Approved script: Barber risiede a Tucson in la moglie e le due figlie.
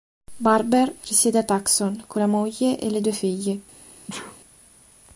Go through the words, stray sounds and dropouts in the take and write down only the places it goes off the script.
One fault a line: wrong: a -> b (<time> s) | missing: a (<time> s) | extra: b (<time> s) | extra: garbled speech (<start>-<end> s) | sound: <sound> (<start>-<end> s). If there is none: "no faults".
wrong: in -> con (2.1 s)
sound: sneeze (4.1-4.4 s)